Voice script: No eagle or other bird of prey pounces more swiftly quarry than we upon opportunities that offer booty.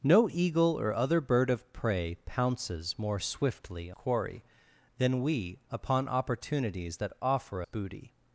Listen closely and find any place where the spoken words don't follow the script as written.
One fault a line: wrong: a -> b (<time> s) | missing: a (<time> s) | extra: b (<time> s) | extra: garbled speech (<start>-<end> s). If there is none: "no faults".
no faults